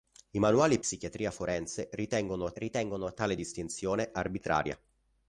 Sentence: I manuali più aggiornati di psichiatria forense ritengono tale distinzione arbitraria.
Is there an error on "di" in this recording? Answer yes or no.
yes